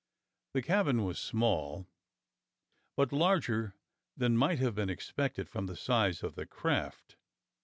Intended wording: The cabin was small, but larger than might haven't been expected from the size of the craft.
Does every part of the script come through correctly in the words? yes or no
no